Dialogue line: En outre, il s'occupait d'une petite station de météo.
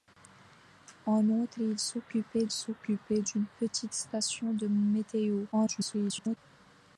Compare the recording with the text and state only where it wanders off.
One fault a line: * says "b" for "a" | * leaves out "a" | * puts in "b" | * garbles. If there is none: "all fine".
* puts in "s'occupait"
* garbles